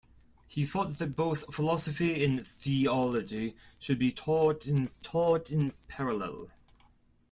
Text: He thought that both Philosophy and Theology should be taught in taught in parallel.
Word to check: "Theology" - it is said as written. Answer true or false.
true